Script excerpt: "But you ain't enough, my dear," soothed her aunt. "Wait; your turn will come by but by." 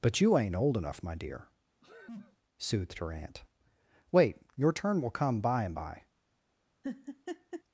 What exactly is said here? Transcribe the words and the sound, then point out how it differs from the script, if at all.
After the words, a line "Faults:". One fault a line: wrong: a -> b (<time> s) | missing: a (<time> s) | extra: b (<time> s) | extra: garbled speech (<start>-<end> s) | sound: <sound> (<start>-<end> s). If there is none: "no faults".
"But you ain't old enough, my dear," soothed her aunt. "Wait; your turn will come by and by."
Faults:
extra: old (0.6 s)
sound: sneeze (1.8-2.4 s)
wrong: but -> and (5.6 s)
sound: laugh (6.8-7.6 s)